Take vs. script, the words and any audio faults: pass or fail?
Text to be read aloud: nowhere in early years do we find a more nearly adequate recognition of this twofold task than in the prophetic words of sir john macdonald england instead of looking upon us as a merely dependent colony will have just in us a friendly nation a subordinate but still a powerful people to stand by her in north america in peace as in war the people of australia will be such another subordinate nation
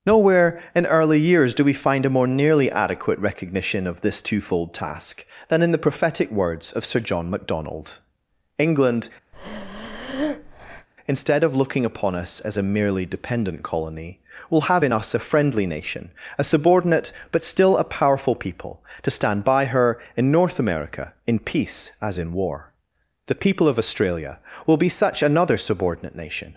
fail